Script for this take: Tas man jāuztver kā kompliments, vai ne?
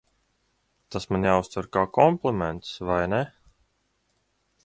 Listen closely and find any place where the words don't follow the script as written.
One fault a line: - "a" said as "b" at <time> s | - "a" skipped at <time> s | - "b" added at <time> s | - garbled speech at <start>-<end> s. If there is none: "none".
none